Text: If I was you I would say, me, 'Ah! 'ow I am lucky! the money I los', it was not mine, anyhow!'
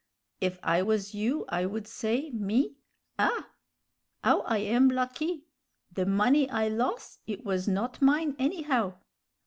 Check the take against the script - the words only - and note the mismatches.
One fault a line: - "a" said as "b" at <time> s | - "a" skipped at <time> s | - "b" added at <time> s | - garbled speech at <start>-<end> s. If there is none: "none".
none